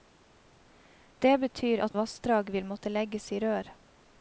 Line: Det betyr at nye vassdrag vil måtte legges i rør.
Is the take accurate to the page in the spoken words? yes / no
no